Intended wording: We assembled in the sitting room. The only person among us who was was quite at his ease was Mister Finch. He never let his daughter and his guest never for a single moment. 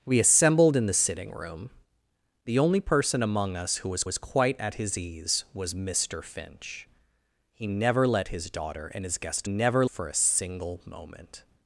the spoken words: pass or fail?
pass